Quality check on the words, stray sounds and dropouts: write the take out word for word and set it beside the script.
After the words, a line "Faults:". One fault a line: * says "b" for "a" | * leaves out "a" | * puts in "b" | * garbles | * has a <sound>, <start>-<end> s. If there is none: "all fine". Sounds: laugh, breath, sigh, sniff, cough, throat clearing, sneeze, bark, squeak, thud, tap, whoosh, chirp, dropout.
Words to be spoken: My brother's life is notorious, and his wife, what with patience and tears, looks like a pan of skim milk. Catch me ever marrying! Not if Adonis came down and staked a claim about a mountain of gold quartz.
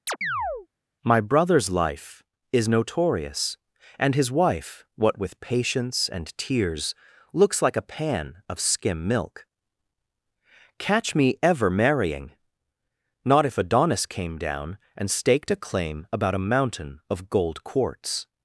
My brother's life is notorious, and his wife, what with patience and tears, looks like a pan of skim milk. Catch me ever marrying! Not if Adonis came down and staked a claim about a mountain of gold quartz.
Faults:
* has a chirp, 0.1-0.7 s